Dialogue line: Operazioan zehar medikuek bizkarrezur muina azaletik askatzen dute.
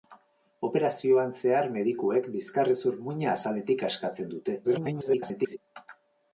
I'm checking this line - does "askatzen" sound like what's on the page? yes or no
yes